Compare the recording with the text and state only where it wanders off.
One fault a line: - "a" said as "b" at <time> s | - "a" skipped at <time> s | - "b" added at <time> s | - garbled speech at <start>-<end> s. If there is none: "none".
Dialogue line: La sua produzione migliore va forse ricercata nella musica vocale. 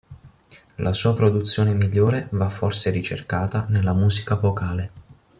none